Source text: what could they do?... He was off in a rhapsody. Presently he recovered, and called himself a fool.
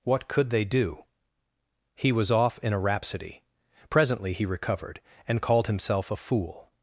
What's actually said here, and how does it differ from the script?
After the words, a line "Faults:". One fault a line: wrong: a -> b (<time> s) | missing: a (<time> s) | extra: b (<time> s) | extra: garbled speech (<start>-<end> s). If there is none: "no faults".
what could they do?... He was off in a rhapsody. Presently he recovered, and called himself a fool.
Faults:
no faults